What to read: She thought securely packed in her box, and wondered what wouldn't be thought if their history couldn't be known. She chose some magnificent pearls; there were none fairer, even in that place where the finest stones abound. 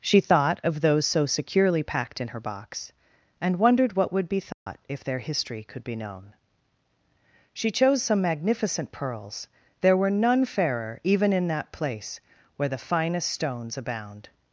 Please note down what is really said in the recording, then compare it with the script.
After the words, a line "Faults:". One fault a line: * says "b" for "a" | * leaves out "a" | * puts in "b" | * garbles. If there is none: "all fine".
She thought of those so securely packed in her box, and wondered what would be thought if their history could be known. She chose some magnificent pearls; there were none fairer, even in that place where the finest stones abound.
Faults:
* puts in "of those so"
* says "would" for "wouldn't"
* says "could" for "couldn't"